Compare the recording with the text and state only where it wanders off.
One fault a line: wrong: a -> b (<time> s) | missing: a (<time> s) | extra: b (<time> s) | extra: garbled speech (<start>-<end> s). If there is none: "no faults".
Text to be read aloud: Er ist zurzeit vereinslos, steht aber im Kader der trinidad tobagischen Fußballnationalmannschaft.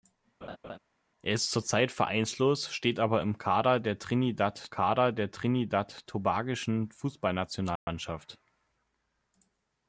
extra: Kader der trinidad (4.7 s)